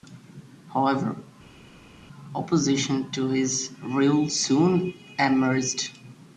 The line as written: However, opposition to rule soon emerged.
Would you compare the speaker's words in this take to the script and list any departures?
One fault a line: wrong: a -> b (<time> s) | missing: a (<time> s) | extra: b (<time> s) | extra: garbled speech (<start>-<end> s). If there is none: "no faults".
extra: his (3.3 s)